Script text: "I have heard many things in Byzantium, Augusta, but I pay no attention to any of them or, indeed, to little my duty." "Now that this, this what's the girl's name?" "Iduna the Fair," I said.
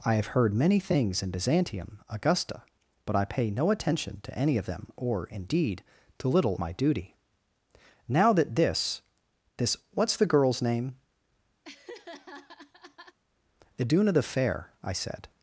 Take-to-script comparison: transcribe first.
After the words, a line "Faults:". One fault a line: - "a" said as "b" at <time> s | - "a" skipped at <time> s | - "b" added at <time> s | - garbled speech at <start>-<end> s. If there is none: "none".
"I have heard many things in Byzantium, Augusta, but I pay no attention to any of them or, indeed, to little my duty." "Now that this, this what's the girl's name?" "Iduna the Fair," I said.
Faults:
none